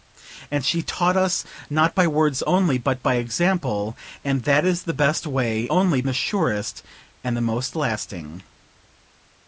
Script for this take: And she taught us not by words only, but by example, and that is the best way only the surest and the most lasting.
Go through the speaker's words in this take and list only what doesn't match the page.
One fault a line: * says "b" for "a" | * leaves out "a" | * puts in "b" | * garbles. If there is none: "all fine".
all fine